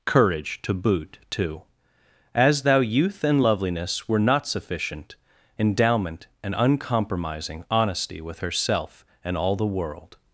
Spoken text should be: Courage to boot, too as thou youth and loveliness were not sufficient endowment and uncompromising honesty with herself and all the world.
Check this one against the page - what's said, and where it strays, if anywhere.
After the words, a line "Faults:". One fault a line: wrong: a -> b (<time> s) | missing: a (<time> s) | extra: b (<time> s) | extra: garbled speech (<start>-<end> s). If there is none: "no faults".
Courage to boot, too as thou youth and loveliness were not sufficient endowment and uncompromising honesty with herself and all the world.
Faults:
no faults